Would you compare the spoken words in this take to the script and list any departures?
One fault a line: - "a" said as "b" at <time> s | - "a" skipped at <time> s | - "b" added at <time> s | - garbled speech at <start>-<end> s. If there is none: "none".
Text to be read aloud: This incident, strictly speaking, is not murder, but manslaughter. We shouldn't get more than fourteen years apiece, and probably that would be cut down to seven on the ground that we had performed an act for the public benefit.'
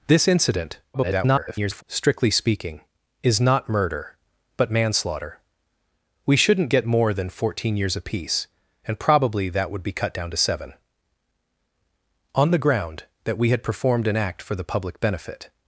- garbled speech at 0.9-1.8 s